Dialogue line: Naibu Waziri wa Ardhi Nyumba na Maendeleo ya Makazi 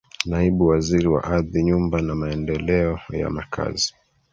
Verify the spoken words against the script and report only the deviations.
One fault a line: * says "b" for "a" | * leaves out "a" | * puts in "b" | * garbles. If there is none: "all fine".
all fine